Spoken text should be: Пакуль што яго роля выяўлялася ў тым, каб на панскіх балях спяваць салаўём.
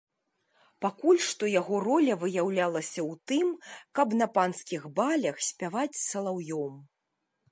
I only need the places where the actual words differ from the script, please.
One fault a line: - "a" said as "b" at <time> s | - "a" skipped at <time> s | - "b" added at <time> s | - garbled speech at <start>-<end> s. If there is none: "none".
none